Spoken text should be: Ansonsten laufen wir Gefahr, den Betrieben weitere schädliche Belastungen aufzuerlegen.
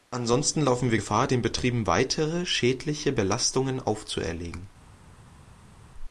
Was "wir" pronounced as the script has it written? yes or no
yes